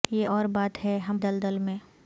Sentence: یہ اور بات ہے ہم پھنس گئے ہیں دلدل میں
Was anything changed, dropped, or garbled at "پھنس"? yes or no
yes